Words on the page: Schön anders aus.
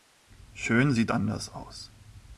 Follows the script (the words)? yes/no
no